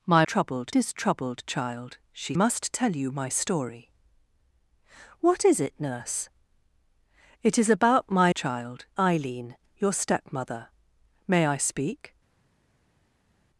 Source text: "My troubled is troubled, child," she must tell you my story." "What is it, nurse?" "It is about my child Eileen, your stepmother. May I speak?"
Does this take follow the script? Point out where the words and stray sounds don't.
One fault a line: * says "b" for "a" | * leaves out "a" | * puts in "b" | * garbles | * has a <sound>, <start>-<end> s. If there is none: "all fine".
all fine